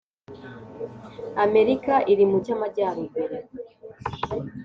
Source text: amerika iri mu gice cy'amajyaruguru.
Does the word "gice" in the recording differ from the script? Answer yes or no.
yes